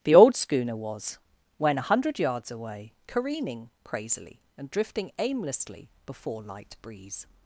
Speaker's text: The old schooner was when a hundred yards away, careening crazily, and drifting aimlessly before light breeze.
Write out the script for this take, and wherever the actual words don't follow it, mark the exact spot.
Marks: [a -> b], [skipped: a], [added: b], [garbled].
The old schooner was when a hundred yards away, careening crazily, and drifting aimlessly before light breeze.